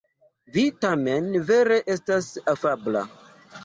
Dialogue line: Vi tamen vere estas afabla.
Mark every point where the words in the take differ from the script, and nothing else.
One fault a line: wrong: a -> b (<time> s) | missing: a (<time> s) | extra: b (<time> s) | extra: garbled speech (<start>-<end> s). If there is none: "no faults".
no faults